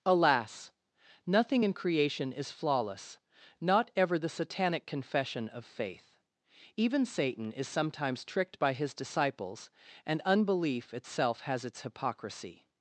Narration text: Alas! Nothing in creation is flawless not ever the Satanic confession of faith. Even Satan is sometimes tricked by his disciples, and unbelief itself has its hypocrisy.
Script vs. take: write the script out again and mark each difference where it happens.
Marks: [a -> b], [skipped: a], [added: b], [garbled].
Alas! Nothing in creation is flawless not ever the Satanic confession of faith. Even Satan is sometimes tricked by his disciples, and unbelief itself has its hypocrisy.